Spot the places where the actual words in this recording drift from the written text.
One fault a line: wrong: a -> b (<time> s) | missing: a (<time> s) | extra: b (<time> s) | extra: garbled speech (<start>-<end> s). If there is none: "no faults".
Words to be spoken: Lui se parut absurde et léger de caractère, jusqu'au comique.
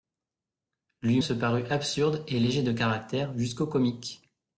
no faults